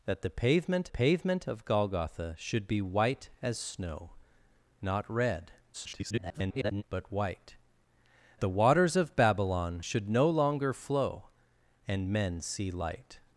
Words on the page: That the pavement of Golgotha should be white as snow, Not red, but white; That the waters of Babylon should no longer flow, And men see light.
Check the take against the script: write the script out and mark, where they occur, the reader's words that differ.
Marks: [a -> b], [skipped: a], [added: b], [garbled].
That the pavement [added: pavement] of Golgotha should be white as snow, Not red, [garbled] but white; [skipped: That] the waters of Babylon should no longer flow, And men see light.